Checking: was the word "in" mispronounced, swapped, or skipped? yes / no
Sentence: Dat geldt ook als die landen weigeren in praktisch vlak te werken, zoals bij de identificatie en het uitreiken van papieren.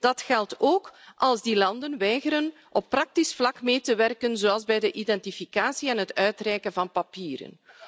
yes